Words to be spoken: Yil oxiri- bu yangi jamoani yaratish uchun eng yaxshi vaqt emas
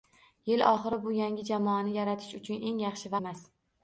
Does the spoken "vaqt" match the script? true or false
false